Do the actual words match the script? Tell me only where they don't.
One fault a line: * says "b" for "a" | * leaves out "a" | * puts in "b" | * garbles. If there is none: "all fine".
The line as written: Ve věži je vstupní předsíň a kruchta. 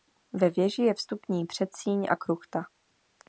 all fine